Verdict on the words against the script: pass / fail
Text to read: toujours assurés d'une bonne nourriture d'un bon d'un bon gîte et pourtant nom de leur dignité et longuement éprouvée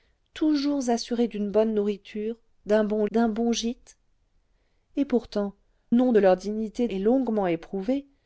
pass